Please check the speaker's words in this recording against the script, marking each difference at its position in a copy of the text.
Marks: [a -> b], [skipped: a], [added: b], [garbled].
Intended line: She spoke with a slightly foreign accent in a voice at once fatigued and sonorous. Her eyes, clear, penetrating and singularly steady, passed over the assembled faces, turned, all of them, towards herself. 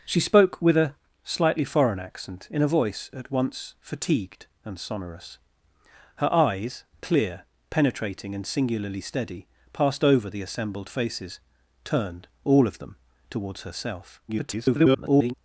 She spoke with a slightly foreign accent in a voice at once fatigued and sonorous. Her eyes, clear, penetrating and singularly steady, passed over the assembled faces, turned, all of them, towards herself. [garbled]